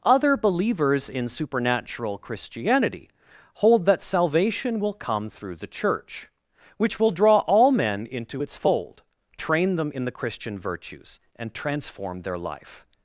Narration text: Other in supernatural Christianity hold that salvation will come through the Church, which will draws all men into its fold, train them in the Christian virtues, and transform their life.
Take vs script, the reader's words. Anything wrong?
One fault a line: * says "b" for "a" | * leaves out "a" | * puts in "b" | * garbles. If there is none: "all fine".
* puts in "believers"
* says "draw" for "draws"